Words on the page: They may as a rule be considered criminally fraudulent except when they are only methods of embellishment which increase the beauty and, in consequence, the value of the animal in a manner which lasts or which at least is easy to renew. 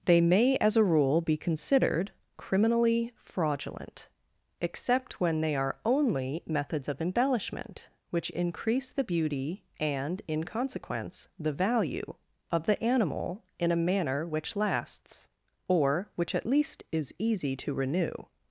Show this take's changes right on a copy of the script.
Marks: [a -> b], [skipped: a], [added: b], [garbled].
They may as a rule be considered criminally fraudulent except when they are only methods of embellishment which increase the beauty and, in consequence, the value of the animal in a manner which lasts or which at least is easy to renew.